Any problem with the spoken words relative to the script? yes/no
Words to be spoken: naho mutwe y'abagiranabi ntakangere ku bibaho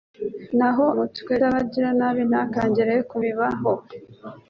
no